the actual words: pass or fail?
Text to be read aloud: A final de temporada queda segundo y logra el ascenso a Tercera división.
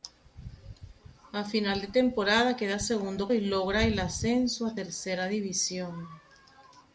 pass